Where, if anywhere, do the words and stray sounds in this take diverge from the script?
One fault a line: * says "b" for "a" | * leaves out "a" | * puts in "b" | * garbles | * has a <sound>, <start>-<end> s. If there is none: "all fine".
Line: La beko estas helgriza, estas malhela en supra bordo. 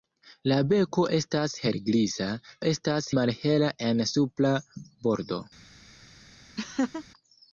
* has a laugh, 6.6-7.1 s